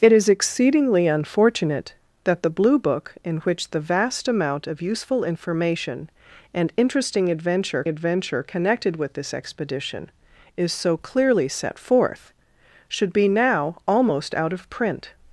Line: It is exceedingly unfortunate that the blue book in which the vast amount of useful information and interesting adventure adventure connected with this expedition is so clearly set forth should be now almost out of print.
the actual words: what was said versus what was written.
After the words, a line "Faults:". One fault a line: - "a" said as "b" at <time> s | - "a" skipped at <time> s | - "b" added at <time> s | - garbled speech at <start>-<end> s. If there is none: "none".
It is exceedingly unfortunate that the blue book in which the vast amount of useful information and interesting adventure adventure connected with this expedition is so clearly set forth should be now almost out of print.
Faults:
none